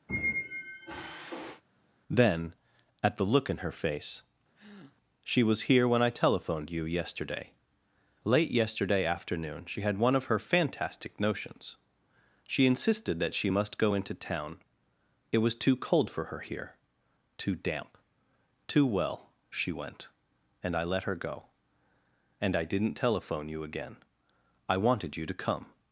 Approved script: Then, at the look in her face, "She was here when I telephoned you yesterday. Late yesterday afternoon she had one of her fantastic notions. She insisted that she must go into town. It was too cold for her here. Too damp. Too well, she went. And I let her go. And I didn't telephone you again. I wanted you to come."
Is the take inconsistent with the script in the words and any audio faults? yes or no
yes